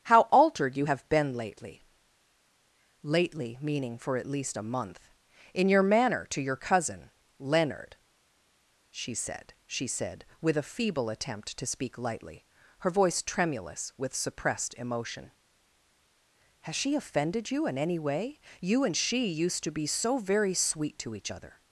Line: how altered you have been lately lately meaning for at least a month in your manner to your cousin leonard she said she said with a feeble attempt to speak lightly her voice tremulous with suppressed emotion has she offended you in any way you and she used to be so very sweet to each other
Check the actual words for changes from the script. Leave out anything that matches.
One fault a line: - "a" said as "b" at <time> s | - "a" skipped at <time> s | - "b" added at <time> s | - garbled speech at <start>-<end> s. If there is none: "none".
none